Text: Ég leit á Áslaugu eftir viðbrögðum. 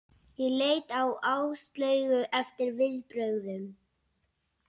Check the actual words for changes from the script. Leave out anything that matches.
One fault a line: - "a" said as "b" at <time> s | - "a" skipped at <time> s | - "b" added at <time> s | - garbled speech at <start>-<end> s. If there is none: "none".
none